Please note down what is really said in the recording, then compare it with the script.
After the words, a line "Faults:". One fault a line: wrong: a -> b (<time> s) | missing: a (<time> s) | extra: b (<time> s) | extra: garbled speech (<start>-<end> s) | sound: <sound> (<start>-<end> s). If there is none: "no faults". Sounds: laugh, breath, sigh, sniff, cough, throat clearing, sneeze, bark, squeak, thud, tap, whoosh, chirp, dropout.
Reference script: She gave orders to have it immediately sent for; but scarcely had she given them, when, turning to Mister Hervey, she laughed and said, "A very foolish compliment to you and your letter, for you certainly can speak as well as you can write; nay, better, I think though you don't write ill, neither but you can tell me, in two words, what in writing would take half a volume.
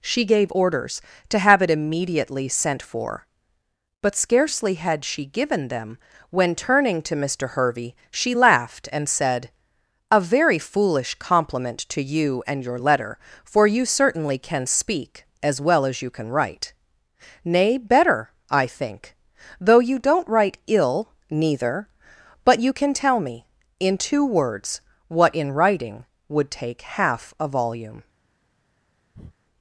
She gave orders to have it immediately sent for; but scarcely had she given them, when, turning to Mister Hervey, she laughed and said, "A very foolish compliment to you and your letter, for you certainly can speak as well as you can write; nay, better, I think though you don't write ill, neither but you can tell me, in two words, what in writing would take half a volume.
Faults:
sound: breath (29.1-29.4 s)